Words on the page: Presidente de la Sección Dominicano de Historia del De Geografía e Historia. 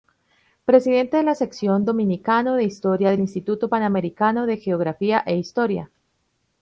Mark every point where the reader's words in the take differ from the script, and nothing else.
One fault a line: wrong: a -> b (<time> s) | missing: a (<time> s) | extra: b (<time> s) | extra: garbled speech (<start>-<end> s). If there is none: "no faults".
extra: Instituto Panamericano (3.2 s)